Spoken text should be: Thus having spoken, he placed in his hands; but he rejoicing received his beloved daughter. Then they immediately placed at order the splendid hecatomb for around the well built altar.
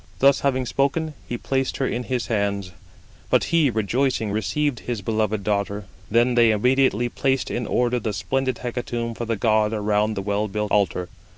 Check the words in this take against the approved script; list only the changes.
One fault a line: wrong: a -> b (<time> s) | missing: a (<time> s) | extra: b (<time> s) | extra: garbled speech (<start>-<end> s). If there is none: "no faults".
extra: her (1.8 s)
wrong: at -> in (7.5 s)
extra: the god (9.2 s)